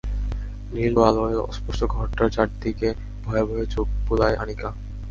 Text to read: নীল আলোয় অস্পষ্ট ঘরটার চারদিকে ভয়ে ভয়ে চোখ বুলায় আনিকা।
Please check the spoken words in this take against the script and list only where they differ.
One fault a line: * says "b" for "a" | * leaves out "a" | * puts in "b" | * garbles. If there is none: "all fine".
all fine